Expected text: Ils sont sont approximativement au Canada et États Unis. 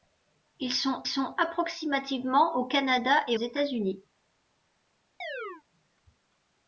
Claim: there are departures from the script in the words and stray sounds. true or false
true